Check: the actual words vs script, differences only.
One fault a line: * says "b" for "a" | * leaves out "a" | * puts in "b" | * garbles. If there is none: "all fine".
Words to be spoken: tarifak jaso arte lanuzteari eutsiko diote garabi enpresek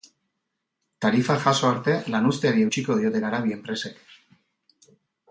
all fine